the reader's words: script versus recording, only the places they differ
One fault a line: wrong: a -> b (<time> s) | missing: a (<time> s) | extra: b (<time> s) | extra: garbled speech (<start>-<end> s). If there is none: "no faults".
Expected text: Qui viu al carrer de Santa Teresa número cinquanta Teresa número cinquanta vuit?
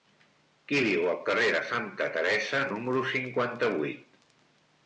missing: Teresa número cinquanta (3.7 s)